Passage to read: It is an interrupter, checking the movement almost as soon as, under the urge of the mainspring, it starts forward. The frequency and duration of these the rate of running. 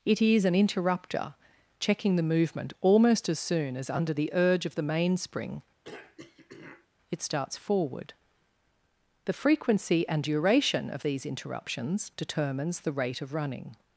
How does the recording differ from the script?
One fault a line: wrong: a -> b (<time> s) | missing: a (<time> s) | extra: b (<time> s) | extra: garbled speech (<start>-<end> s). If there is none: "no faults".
extra: interruptions determines (11.2 s)